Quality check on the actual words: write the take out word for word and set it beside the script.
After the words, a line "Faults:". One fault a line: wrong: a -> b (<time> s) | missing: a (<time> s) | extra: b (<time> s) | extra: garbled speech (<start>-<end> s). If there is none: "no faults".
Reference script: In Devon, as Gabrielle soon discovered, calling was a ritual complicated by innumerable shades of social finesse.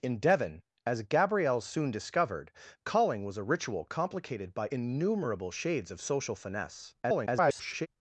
In Devon, as Gabrielle soon discovered, calling was a ritual complicated by innumerable shades of social finesse. [garbled]
Faults:
extra: garbled speech (7.0-7.9 s)